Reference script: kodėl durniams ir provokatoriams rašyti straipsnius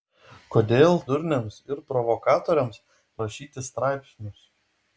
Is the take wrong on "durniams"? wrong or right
right